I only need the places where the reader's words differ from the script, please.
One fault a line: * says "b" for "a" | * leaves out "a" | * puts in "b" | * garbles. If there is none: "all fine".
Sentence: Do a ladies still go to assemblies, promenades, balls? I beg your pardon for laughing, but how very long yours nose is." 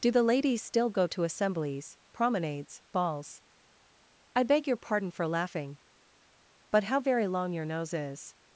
* says "the" for "a"
* says "your" for "yours"